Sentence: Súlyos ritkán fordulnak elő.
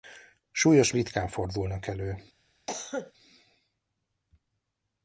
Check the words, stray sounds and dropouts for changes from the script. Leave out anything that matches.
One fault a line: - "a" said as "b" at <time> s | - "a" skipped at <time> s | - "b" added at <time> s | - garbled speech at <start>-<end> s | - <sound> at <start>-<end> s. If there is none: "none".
- cough at 2.7-3.1 s